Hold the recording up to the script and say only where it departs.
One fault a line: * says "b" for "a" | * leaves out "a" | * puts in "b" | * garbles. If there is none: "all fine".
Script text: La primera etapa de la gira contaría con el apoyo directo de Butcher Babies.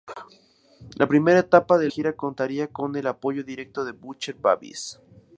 * leaves out "la"